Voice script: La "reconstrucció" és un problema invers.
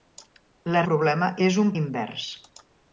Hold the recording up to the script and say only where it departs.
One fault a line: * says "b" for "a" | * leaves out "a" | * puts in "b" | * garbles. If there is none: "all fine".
* says "problema" for "reconstrucció"
* leaves out "problema"